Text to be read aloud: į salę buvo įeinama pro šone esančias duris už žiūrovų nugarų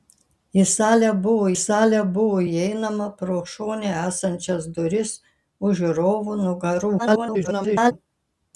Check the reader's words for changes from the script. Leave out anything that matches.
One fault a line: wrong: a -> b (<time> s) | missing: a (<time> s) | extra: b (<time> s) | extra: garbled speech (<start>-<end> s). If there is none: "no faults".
extra: salę buvo (1.6 s)
extra: garbled speech (7.0-7.9 s)